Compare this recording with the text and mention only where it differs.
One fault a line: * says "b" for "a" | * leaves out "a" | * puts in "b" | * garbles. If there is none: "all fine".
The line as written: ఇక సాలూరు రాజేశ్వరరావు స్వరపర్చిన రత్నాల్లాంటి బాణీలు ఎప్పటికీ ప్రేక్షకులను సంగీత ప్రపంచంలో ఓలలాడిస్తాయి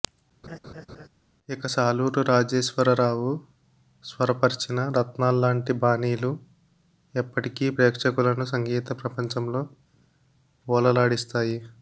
all fine